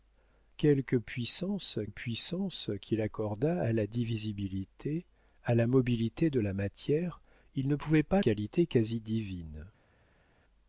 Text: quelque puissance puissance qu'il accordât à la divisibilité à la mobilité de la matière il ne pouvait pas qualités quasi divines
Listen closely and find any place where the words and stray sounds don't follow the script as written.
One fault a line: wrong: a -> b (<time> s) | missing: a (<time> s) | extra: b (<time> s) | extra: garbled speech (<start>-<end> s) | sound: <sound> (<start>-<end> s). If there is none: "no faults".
no faults